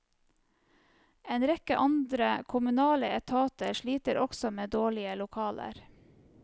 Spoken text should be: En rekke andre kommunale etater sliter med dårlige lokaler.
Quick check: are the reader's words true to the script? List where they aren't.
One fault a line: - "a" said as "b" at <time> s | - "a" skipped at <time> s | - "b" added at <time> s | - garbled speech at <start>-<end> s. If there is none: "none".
- "også" added at 4.2 s